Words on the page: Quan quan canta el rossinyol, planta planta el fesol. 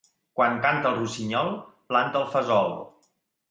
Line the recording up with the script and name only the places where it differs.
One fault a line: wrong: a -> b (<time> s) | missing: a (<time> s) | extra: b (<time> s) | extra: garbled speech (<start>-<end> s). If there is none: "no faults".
missing: quan (0.6 s)
missing: planta (2.2 s)